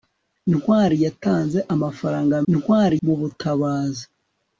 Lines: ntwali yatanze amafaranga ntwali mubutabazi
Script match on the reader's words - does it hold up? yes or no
yes